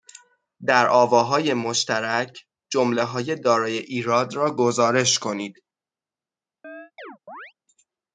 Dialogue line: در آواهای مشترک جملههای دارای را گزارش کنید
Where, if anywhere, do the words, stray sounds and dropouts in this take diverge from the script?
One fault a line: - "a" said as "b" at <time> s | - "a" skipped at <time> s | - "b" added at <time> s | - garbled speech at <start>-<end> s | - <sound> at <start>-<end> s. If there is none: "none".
- "ایراد" added at 3.8 s
- chirp at 6.6-7.5 s